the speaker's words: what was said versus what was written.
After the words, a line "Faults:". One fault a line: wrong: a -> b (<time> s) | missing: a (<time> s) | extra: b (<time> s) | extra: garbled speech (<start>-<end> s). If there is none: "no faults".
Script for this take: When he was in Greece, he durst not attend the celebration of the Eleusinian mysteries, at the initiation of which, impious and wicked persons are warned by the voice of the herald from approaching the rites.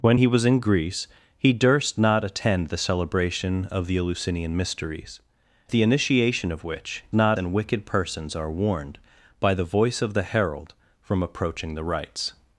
When he was in Greece, he durst not attend the celebration of the Eleusinian mysteries, the initiation of which, not and wicked persons are warned by the voice of the herald from approaching the rites.
Faults:
missing: at (5.2 s)
wrong: impious -> not (7.1 s)